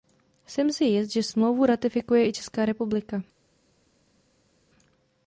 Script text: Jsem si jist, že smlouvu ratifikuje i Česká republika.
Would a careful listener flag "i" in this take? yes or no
no